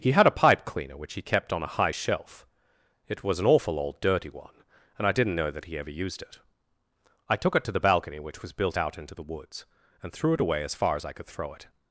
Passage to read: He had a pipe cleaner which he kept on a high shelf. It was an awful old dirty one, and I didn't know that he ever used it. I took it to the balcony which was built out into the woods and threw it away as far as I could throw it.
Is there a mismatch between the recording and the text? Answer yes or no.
no